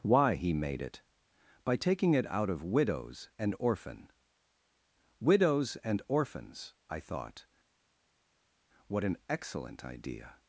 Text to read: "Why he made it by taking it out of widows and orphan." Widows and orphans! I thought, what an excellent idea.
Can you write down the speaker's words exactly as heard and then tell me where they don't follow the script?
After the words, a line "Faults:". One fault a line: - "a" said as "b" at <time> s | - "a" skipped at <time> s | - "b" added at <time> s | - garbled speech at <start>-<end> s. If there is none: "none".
"Why he made it by taking it out of widows and orphan." Widows and orphans! I thought, what an excellent idea.
Faults:
none